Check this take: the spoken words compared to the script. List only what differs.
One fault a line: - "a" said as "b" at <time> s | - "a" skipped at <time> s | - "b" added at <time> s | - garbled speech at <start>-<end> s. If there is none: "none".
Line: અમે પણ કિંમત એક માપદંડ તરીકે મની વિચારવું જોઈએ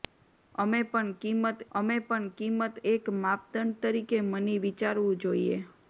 - "અમે પણ કિંમત" added at 1.7 s